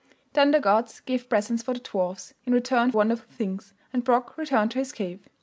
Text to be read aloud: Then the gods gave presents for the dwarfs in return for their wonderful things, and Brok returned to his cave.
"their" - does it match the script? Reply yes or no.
no